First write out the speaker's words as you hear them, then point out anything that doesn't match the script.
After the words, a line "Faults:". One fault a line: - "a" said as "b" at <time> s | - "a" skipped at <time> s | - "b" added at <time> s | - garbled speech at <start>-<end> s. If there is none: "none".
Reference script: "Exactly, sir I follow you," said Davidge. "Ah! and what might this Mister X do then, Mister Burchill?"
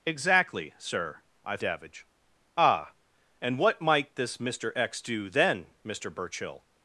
"Exactly, sir I Davidge. "Ah! and what might this Mister X do then, Mister Burchill?"
Faults:
- "follow you said" skipped at 1.6 s